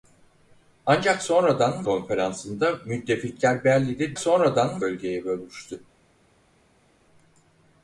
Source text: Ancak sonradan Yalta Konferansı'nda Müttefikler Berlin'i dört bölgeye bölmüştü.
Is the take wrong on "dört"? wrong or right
wrong